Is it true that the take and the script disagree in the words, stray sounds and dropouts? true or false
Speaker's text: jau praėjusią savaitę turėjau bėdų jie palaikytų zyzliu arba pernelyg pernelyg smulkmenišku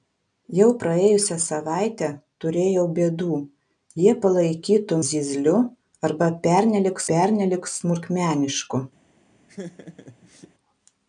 true